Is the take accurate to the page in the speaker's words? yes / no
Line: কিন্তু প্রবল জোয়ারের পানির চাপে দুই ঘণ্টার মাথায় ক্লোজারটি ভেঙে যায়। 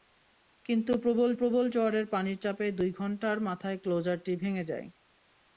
no